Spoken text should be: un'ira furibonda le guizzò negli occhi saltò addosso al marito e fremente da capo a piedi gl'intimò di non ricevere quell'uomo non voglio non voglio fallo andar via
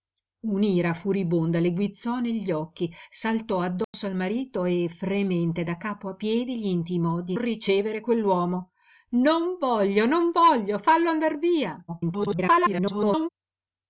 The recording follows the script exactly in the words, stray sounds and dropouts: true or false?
false